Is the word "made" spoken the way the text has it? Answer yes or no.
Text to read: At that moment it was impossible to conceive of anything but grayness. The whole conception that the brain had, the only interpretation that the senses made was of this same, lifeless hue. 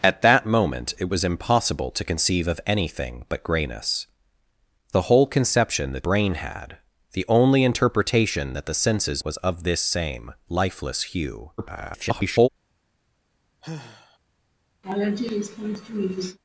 no